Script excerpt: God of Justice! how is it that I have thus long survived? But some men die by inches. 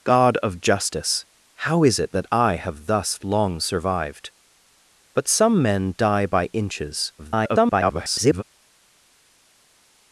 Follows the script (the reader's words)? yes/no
no